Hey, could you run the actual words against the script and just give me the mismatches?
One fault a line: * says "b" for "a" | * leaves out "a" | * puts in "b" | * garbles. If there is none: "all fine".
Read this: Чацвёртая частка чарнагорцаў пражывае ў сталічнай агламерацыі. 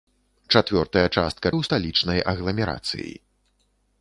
* leaves out "чарнагорцаў пражывае"